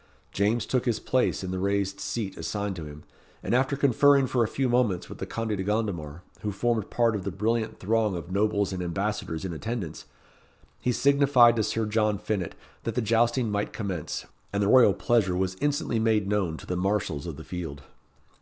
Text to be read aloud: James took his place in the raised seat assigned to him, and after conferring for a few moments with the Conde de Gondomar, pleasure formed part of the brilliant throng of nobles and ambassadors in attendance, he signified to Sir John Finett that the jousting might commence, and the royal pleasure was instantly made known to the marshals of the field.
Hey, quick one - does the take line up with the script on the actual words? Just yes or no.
no